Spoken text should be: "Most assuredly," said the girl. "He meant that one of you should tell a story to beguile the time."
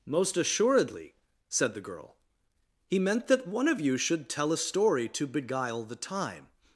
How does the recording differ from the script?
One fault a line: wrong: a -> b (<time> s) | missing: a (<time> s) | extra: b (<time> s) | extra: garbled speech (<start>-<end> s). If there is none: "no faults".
no faults